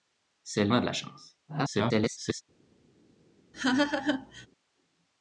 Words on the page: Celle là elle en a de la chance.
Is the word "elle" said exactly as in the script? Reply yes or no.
no